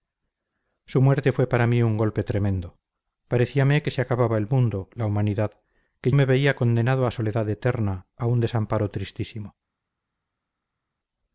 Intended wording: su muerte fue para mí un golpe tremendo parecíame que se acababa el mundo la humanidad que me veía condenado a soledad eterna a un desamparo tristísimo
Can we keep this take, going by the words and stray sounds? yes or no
yes